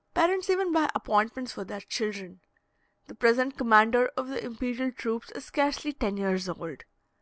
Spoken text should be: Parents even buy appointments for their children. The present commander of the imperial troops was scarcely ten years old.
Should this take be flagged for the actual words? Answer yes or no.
yes